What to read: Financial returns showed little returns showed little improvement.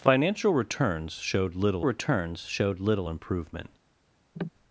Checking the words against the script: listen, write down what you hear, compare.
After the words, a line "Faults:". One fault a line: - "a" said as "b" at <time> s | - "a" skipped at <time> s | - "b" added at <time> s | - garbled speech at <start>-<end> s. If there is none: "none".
Financial returns showed little returns showed little improvement.
Faults:
none